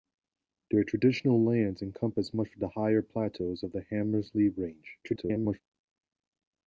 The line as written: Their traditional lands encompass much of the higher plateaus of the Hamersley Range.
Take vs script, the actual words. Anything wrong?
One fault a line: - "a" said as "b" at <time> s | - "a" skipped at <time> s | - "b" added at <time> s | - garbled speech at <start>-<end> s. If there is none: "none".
- garbled speech at 5.0-5.6 s